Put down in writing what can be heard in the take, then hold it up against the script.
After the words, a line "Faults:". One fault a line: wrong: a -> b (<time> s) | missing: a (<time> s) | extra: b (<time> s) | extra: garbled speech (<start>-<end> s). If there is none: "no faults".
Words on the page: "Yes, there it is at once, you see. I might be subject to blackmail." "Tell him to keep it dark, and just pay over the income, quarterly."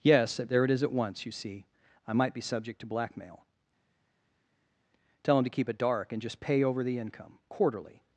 "Yes, there it is at once, you see. I might be subject to blackmail." "Tell him to keep it dark, and just pay over the income, quarterly."
Faults:
no faults